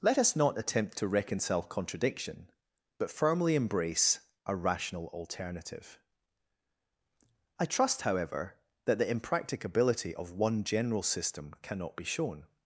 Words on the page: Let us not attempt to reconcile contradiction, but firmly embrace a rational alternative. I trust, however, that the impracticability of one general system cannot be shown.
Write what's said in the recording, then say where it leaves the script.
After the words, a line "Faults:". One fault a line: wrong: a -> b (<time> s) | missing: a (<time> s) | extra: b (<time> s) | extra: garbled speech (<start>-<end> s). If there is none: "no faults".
Let us not attempt to reconcile contradiction, but firmly embrace a rational alternative. I trust, however, that the impracticability of one general system cannot be shown.
Faults:
no faults